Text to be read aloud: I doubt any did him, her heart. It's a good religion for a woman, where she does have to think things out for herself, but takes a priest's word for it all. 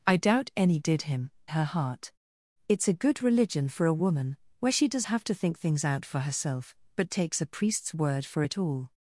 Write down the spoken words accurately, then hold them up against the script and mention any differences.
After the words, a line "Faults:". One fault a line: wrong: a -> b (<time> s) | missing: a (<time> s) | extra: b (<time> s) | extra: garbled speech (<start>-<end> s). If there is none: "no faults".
I doubt any did him, her heart. It's a good religion for a woman, where she does have to think things out for herself, but takes a priest's word for it all.
Faults:
no faults